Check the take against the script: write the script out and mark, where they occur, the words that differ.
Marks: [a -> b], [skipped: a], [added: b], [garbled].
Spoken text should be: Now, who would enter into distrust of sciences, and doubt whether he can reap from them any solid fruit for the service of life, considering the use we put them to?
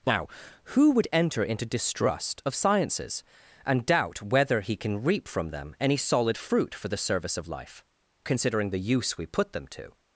Now, who would enter into distrust of sciences, and doubt whether he can reap from them any solid fruit for the service of life, considering the use we put them to?